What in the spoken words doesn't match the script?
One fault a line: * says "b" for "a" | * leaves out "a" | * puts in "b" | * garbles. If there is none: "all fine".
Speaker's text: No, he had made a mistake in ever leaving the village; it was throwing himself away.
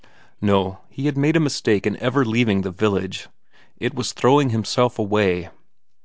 all fine